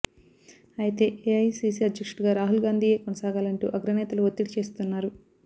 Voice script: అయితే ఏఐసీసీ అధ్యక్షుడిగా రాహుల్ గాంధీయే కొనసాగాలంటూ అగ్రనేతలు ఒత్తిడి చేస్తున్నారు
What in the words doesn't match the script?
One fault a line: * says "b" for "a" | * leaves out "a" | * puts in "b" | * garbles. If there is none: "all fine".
all fine